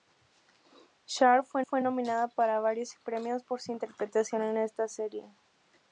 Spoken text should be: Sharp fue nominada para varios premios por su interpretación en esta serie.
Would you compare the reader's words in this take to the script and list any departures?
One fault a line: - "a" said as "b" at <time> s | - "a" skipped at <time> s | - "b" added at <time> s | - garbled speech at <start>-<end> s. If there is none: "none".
- "fue" added at 1.6 s